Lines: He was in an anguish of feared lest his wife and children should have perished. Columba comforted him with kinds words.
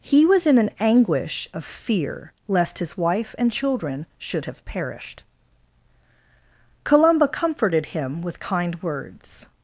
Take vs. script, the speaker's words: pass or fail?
fail